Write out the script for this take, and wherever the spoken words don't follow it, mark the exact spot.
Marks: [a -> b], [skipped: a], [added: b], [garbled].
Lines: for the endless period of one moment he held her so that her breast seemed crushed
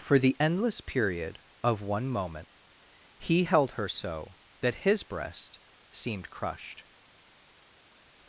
for the endless period of one moment he held her so that [her -> his] breast seemed crushed